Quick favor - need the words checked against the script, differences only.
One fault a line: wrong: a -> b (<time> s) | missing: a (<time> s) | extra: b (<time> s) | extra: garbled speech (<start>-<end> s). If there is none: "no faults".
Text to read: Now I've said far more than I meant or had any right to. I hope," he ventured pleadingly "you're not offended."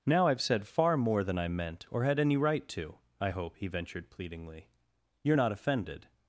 no faults